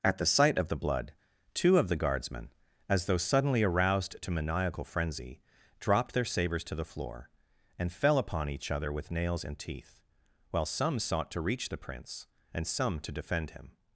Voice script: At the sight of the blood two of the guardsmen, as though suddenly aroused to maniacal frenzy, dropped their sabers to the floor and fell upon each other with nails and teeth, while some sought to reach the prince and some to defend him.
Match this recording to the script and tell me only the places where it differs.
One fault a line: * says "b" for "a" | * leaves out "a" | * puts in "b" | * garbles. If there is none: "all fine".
all fine